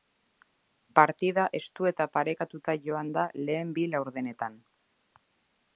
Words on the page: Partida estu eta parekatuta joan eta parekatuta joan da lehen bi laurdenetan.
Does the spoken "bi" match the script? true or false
true